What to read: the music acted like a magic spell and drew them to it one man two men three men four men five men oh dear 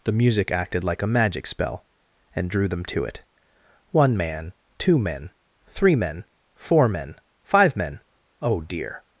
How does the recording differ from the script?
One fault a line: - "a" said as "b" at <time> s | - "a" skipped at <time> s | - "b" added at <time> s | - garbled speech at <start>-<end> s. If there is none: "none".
none